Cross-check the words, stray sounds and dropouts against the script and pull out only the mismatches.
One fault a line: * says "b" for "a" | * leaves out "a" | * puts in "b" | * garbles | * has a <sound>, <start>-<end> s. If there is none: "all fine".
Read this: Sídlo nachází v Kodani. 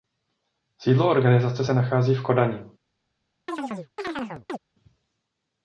* puts in "organizace se"
* has a chirp, 3.5-4.6 s